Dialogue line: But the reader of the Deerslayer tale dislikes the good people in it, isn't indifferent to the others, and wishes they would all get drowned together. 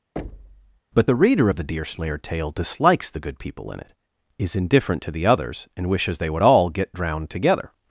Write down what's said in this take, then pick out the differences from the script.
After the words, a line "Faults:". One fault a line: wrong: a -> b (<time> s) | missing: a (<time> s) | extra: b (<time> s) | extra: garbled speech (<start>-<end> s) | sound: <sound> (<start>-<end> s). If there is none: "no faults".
But the reader of the Deerslayer tale dislikes the good people in it, is indifferent to the others, and wishes they would all get drowned together.
Faults:
sound: thud (0.2-0.8 s)
wrong: isn't -> is (4.4 s)